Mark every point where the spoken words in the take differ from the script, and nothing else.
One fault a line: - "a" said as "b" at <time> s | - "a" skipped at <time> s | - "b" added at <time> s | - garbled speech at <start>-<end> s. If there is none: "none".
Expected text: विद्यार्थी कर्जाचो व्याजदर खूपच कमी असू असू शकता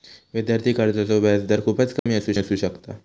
none